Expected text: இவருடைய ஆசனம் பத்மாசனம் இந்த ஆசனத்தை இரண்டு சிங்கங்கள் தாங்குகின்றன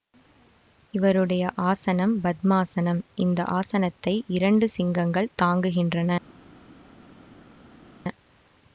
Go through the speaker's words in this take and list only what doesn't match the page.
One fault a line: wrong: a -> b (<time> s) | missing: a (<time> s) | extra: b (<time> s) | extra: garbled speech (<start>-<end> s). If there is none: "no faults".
no faults